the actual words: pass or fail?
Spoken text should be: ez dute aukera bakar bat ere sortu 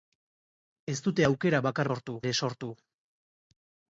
fail